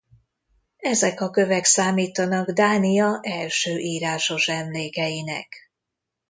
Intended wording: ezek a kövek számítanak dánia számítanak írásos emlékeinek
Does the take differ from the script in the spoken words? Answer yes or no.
yes